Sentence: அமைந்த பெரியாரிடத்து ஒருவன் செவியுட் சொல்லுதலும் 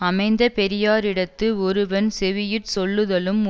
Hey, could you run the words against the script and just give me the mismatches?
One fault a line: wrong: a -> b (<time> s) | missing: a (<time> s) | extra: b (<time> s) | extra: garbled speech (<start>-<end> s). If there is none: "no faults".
no faults